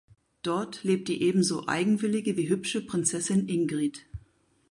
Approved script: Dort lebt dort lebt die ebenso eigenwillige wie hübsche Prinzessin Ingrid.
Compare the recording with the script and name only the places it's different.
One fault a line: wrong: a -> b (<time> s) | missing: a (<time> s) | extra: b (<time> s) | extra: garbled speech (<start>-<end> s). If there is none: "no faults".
missing: dort lebt (1.1 s)